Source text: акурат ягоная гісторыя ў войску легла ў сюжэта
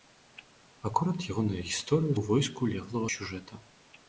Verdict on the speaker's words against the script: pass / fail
pass